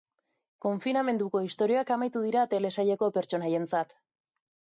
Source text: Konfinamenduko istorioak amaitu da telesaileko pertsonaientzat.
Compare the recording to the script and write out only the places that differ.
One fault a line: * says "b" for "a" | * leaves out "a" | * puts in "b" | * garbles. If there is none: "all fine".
* says "dira" for "da"